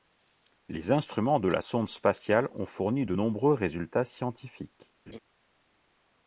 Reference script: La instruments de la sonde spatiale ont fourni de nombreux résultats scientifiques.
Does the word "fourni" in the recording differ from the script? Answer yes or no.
no